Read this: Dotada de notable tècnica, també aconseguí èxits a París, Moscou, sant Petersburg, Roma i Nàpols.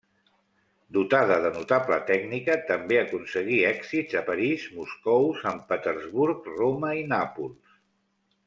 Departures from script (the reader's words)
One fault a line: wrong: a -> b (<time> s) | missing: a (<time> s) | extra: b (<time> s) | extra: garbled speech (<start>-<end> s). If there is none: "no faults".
no faults